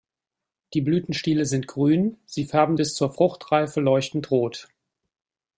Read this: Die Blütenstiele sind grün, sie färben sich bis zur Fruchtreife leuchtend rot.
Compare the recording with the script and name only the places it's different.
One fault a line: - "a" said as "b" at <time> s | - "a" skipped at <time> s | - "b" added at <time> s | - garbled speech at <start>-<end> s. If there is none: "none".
- "sich" skipped at 2.8 s